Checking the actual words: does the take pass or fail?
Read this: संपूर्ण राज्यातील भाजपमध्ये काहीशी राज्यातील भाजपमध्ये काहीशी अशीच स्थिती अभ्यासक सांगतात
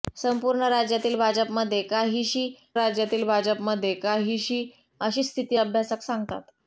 pass